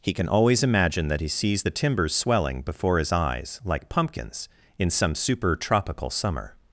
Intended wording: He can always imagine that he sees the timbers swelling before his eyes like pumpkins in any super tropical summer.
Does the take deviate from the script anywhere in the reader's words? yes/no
yes